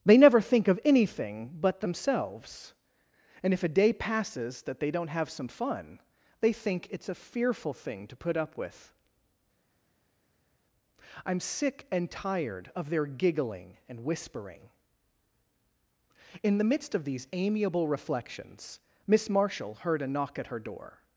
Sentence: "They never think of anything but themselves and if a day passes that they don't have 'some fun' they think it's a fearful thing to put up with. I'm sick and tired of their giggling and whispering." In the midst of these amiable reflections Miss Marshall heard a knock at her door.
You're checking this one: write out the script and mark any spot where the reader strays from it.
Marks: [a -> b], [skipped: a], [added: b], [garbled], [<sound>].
"They never think of anything but themselves and if a day passes that they don't have 'some fun' they think it's a fearful thing to put up with. I'm sick and tired of their giggling and whispering." In the midst of these amiable reflections Miss Marshall heard a knock at her door.